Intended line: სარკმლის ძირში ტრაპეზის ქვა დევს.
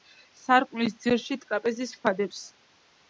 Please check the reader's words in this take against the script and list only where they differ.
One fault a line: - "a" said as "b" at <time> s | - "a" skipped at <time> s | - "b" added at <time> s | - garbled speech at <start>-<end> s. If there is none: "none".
none